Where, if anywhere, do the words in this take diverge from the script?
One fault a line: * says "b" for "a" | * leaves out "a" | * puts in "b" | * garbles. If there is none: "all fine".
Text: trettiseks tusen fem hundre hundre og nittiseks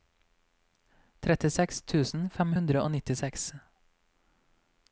* leaves out "hundre"